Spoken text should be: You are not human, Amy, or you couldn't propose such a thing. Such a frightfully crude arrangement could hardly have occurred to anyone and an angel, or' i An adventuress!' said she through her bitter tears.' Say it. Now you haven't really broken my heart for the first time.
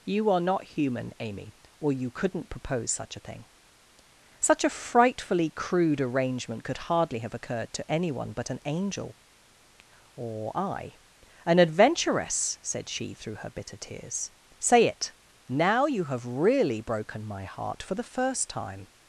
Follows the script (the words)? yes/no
no